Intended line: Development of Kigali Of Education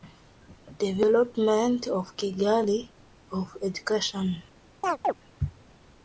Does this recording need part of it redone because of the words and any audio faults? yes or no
yes